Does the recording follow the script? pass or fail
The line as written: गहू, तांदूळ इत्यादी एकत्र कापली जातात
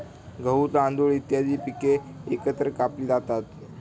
fail